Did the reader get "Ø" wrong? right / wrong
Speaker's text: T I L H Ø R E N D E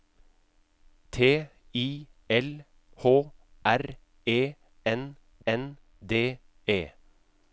wrong